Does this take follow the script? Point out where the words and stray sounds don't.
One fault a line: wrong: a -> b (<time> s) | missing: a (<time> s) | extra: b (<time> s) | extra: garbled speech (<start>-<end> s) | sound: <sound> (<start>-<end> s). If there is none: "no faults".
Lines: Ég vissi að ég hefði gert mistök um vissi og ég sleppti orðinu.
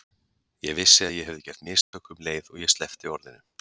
sound: dropout (1.8-1.9 s)
wrong: vissi -> leið (2.3 s)